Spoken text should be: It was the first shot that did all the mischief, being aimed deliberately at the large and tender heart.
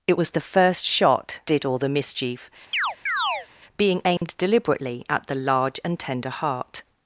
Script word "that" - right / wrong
wrong